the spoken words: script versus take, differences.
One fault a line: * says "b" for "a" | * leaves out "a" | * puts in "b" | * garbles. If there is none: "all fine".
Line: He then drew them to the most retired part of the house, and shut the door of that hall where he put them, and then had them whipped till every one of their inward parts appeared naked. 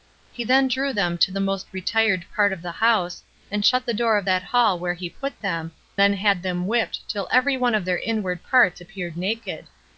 * leaves out "and"